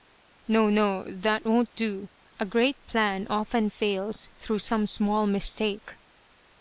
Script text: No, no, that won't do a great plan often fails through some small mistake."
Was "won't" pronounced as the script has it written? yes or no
yes